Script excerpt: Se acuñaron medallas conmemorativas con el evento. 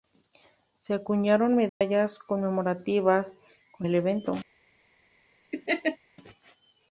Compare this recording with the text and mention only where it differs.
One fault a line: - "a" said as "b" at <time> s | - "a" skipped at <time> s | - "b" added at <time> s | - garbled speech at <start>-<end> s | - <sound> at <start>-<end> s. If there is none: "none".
- dropout at 1.7-1.8 s
- laugh at 5.5-6.0 s